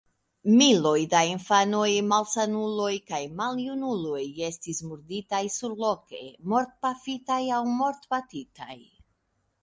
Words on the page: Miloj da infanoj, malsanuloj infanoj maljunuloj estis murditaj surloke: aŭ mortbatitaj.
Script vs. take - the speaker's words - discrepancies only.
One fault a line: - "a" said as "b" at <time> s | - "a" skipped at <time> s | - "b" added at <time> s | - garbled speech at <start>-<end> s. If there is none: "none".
- "infanoj" said as "kaj" at 3.1 s
- "mortpafitaj" added at 6.5 s